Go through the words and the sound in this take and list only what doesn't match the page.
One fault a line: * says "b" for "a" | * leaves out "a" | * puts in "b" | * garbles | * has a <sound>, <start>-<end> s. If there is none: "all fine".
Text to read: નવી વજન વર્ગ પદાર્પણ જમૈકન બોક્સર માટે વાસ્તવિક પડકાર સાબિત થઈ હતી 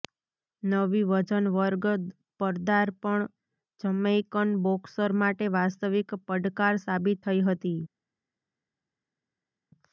all fine